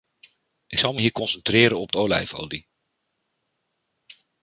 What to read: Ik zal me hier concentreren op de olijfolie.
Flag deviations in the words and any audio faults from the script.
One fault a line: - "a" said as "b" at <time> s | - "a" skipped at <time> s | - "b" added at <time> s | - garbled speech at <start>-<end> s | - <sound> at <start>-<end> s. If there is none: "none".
none